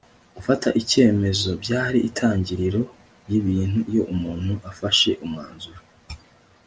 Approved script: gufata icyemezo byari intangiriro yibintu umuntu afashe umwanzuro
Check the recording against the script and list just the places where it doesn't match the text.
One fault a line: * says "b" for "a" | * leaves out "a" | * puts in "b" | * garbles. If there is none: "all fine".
* puts in "iyo"